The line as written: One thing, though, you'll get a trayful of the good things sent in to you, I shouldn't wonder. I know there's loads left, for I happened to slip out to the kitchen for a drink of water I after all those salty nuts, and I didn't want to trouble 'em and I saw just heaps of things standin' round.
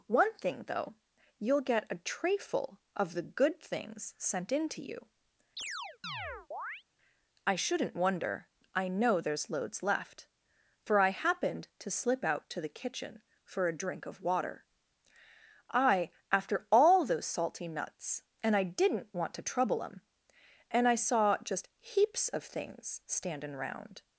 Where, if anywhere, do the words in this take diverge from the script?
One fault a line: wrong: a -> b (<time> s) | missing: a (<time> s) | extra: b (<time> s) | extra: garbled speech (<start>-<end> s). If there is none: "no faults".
no faults